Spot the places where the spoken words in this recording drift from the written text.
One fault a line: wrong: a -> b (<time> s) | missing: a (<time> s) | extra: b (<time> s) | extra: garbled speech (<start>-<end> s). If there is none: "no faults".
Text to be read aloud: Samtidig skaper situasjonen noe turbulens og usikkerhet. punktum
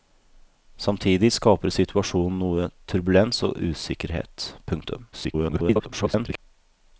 extra: garbled speech (5.1-6.4 s)